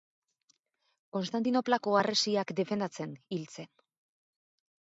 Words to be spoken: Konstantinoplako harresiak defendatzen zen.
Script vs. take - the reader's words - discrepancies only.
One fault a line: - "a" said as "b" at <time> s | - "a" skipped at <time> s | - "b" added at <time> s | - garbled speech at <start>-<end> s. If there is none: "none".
- "hil" added at 3.4 s